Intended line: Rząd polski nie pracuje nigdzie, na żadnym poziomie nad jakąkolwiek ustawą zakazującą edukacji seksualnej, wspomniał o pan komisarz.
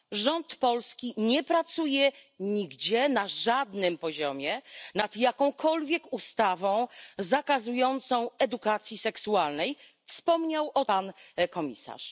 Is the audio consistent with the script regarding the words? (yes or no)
yes